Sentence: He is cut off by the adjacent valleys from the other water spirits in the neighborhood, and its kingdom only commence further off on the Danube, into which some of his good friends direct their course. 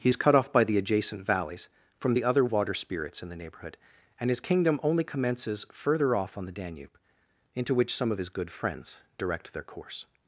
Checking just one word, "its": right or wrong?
wrong